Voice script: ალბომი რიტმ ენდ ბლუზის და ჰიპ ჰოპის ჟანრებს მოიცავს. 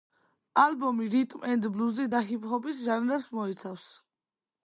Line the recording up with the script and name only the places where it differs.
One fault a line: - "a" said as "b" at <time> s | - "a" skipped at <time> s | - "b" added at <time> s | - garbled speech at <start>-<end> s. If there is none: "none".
none